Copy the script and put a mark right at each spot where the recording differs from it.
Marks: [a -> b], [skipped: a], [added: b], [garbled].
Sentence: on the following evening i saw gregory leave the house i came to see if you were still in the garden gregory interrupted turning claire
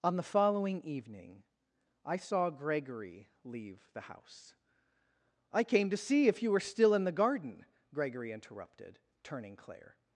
on the following evening i saw gregory leave the house i came to see if you were still in the garden gregory interrupted turning claire